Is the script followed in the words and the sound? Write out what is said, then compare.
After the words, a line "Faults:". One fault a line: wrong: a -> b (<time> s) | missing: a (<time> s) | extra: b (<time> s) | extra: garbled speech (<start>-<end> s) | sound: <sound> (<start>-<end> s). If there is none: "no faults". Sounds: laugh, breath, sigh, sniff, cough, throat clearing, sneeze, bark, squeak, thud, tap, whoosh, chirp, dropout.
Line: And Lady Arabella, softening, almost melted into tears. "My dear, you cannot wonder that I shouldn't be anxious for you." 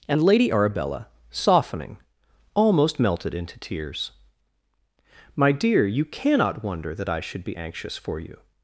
And Lady Arabella, softening, almost melted into tears. "My dear, you cannot wonder that I should be anxious for you."
Faults:
wrong: shouldn't -> should (7.2 s)